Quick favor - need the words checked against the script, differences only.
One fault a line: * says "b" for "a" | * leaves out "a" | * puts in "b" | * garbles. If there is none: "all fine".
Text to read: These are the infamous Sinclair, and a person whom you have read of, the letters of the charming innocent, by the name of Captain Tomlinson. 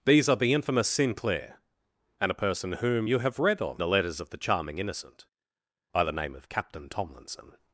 all fine